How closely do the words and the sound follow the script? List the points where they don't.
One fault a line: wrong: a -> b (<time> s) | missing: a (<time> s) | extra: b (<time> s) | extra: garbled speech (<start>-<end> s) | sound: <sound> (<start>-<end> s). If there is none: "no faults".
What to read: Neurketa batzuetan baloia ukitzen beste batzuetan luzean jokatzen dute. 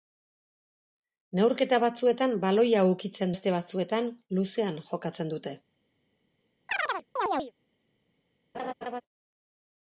sound: chirp (6.7-7.5 s)
sound: laugh (8.5-9.0 s)